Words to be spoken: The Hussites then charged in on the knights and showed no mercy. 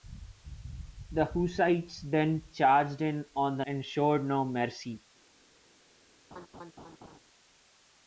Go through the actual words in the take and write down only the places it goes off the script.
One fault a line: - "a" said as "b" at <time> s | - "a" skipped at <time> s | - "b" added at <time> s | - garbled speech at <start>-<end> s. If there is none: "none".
- "knights" skipped at 3.6 s